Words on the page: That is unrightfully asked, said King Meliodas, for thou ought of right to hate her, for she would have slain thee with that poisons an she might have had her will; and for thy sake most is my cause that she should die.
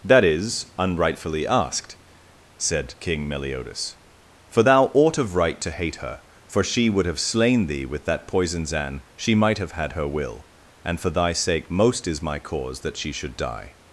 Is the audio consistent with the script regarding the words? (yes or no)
yes